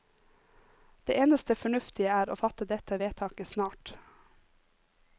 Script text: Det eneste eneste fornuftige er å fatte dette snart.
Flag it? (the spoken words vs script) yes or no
yes